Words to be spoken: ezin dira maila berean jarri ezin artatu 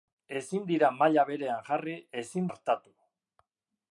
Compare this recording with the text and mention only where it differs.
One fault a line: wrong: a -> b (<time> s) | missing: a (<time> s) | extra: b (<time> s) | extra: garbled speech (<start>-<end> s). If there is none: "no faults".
no faults